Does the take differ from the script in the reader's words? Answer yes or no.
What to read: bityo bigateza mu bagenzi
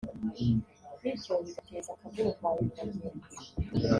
yes